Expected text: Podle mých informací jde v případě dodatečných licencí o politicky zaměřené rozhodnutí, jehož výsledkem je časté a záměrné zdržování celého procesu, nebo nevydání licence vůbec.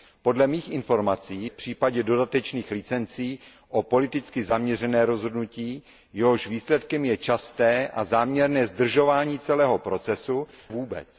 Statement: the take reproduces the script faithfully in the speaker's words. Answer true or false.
false